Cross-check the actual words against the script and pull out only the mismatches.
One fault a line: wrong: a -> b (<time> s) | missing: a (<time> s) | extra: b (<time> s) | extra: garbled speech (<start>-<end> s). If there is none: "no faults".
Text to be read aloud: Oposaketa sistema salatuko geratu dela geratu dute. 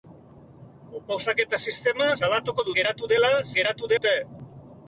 no faults